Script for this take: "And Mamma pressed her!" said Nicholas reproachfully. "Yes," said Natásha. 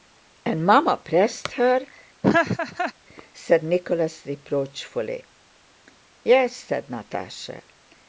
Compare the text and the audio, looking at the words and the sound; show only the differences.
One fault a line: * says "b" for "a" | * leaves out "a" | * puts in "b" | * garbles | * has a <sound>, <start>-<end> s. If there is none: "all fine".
* has a laugh, 2.2-2.9 s